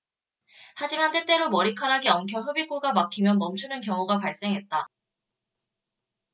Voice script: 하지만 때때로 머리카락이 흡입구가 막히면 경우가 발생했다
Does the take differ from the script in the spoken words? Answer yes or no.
yes